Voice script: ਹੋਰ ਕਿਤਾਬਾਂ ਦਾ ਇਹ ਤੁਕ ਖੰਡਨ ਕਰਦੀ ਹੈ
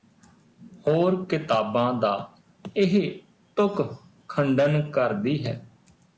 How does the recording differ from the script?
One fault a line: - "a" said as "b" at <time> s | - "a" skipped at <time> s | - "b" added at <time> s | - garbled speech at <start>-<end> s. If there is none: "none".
none